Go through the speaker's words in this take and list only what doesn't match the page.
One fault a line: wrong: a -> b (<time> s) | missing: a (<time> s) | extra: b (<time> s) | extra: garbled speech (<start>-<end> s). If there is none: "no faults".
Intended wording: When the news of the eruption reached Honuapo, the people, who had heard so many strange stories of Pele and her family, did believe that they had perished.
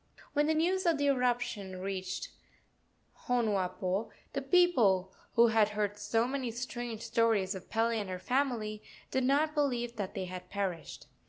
extra: not (9.2 s)